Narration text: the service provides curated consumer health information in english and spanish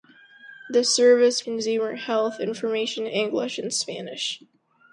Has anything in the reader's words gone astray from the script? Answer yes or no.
yes